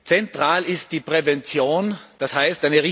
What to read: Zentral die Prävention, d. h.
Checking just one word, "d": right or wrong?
right